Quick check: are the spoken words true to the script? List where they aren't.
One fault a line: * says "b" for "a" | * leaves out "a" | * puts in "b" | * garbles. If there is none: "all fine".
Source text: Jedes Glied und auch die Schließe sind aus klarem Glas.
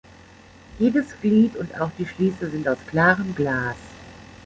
all fine